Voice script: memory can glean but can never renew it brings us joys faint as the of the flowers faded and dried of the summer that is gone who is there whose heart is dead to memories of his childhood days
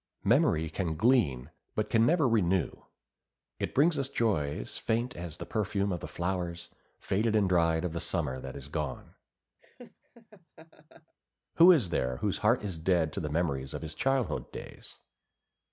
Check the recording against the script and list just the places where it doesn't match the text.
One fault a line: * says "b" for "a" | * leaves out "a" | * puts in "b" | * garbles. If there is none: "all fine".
* puts in "perfume"
* puts in "the"